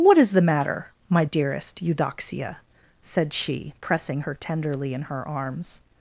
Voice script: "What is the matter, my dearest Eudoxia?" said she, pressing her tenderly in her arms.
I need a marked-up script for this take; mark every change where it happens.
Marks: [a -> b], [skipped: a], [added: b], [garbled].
"What is the matter, my dearest Eudoxia?" said she, pressing her tenderly in her arms.